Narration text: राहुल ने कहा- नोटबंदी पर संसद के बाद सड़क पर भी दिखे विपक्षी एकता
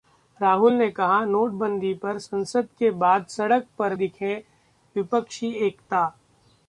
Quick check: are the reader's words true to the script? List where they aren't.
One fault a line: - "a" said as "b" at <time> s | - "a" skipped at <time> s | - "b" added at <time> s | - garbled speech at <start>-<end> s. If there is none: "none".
- "भी" skipped at 4.0 s